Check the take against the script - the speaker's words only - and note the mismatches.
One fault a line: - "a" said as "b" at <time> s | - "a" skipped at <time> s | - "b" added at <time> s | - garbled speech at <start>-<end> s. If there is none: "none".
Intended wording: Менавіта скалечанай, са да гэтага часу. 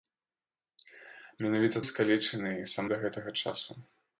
none